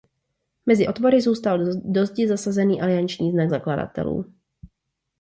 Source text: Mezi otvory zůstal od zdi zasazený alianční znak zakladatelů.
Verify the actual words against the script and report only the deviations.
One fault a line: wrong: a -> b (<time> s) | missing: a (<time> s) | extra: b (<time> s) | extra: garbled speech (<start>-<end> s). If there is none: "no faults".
wrong: od -> do (1.8 s)